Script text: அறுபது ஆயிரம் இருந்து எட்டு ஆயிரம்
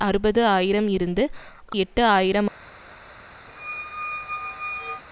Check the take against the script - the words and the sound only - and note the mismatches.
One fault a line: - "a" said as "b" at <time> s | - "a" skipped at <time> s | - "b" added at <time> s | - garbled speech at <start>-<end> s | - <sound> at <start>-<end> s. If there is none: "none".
- squeak at 3.5-5.0 s